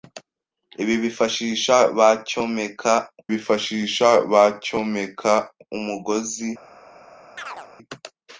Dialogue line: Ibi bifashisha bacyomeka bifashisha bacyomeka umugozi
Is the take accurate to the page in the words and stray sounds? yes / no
no